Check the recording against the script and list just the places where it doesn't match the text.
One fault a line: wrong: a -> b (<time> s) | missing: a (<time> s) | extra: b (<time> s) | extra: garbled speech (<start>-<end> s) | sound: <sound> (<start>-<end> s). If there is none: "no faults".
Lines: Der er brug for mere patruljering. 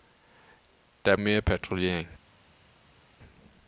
missing: brug for (1.1 s)